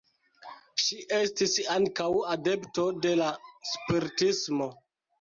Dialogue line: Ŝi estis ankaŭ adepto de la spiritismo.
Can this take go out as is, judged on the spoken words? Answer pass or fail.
pass